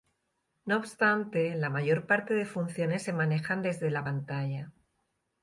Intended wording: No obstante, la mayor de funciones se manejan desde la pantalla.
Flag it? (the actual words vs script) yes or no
yes